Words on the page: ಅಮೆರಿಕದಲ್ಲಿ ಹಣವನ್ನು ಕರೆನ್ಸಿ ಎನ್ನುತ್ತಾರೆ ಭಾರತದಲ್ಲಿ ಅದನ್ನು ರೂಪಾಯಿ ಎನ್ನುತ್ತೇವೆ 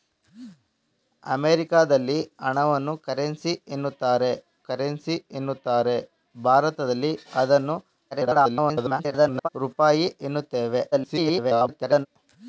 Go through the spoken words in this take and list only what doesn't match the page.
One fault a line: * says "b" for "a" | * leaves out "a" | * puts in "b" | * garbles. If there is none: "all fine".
* puts in "ಕರೆನ್ಸಿ ಎನ್ನುತ್ತಾರೆ"
* garbles
* garbles